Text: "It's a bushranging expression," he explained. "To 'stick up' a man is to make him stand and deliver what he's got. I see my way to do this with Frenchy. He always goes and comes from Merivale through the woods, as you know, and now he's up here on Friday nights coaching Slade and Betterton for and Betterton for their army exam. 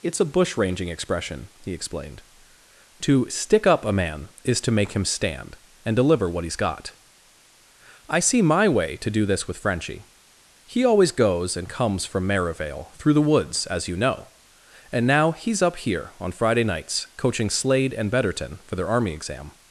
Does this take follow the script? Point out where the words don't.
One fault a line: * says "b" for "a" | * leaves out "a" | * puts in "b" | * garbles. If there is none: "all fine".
* leaves out "and Betterton for"